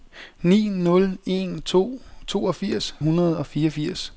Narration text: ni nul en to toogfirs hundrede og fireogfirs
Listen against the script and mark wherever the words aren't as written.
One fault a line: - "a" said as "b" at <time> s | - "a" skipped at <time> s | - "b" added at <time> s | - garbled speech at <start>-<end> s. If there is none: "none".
none